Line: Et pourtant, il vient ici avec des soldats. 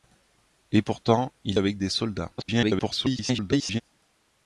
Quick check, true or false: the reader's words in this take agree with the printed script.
false